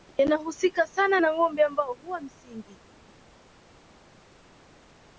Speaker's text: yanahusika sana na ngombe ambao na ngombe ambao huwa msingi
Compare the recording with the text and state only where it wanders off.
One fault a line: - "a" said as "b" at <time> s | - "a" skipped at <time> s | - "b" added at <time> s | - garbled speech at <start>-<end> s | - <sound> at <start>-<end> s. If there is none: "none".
- "na ngombe ambao" skipped at 1.9 s